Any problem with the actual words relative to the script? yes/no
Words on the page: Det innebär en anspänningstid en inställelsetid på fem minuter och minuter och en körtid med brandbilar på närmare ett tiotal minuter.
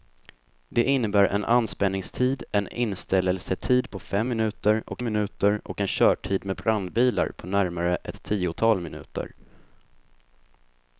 no